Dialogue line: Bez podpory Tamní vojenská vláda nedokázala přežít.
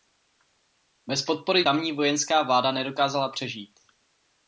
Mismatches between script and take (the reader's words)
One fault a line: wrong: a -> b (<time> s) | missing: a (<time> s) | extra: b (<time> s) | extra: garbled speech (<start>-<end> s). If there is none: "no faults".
no faults